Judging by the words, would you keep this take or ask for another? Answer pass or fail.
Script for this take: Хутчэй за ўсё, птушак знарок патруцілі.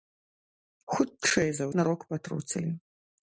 fail